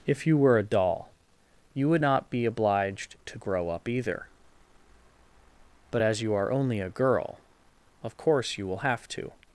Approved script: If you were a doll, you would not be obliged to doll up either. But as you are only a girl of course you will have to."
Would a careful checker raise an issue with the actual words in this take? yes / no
yes